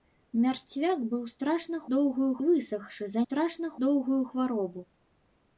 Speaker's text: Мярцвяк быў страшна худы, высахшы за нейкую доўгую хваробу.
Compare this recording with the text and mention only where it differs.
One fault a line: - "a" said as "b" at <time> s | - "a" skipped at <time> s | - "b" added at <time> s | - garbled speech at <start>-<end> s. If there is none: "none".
- "худы" said as "доўгую" at 1.9 s
- "нейкую" said as "страшна" at 3.2 s